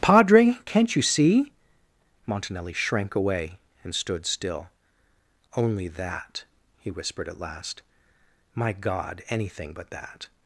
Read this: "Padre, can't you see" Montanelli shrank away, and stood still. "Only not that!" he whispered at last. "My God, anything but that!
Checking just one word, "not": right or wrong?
wrong